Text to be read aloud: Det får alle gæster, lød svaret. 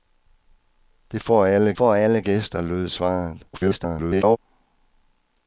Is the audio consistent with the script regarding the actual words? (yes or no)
no